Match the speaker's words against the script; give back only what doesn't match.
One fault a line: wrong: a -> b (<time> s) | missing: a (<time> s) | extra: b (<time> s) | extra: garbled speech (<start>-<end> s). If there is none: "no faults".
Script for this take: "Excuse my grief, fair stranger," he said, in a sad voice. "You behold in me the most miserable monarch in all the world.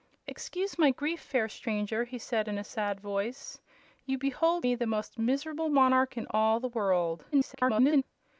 missing: in (4.7 s)
extra: garbled speech (7.3-8.0 s)